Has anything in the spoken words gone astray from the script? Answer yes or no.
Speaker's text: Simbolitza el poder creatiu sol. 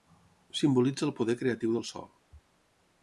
yes